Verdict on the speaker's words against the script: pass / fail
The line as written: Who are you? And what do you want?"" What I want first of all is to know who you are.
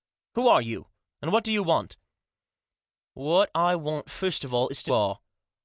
fail